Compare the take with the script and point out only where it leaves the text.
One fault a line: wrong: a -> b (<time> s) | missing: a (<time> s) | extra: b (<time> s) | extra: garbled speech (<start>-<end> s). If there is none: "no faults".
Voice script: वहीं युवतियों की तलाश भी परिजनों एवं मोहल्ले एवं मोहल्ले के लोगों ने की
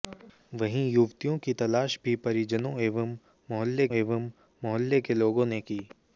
no faults